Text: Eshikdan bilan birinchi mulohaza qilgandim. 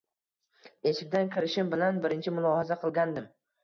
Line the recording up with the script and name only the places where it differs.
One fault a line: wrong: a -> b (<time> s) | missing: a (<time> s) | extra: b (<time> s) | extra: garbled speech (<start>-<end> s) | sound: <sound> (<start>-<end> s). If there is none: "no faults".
extra: kirishim (1.4 s)